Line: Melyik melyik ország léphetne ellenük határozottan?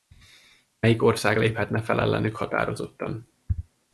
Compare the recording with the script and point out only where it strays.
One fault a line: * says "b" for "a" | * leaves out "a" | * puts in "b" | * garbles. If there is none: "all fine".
* leaves out "melyik"
* puts in "fel"